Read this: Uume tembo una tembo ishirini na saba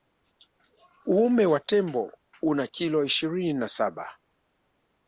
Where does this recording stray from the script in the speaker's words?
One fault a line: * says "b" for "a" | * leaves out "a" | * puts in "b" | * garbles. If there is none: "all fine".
* puts in "wa"
* says "kilo" for "tembo"